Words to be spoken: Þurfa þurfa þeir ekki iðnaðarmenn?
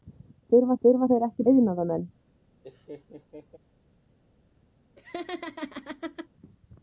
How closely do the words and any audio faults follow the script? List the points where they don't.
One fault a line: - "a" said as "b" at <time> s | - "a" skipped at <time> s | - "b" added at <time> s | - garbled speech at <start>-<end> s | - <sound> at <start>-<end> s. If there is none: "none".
- laugh at 2.6-3.6 s
- laugh at 5.0-6.3 s